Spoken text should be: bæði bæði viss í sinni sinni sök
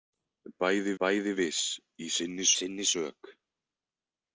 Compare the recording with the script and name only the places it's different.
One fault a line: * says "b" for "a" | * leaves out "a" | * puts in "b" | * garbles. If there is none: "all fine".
all fine